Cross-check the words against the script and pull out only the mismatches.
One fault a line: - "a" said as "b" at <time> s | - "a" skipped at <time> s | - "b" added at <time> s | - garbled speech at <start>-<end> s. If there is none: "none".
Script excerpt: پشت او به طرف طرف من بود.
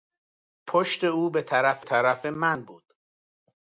none